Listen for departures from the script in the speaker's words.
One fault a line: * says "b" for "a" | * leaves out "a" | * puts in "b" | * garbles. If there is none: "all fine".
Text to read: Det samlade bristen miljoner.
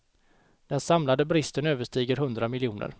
* says "Den" for "Det"
* puts in "överstiger hundra"